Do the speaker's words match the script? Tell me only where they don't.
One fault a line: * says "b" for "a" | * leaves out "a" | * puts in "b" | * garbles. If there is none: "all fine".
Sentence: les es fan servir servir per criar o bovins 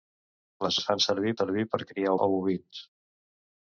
all fine